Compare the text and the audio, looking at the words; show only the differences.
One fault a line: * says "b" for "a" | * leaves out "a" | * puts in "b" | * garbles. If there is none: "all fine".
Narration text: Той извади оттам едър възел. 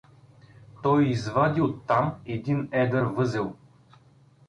* puts in "един"